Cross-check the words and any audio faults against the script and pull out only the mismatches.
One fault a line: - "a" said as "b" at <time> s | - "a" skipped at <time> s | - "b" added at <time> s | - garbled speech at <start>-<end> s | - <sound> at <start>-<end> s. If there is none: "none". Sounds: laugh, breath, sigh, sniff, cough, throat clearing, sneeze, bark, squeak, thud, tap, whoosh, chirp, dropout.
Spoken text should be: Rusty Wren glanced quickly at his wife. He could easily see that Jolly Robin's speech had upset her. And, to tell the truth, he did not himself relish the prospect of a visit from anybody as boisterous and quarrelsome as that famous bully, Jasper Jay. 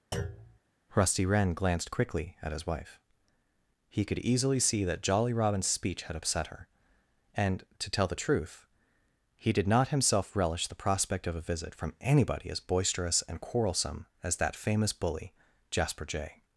- thud at 0.1-0.6 s